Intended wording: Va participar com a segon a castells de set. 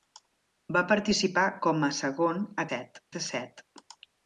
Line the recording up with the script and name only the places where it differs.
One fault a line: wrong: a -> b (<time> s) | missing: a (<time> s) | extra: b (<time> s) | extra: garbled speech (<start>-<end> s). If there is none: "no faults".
wrong: castells -> set (2.7 s)